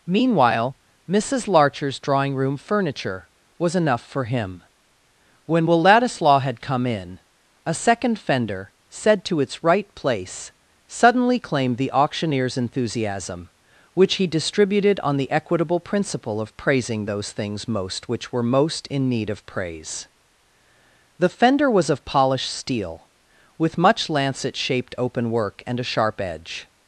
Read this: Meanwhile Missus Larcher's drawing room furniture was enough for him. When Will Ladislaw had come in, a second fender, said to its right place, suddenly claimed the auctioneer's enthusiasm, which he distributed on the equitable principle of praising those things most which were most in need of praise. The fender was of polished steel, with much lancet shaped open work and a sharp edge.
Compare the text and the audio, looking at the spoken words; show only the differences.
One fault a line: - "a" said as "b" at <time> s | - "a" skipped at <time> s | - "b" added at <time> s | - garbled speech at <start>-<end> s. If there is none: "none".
none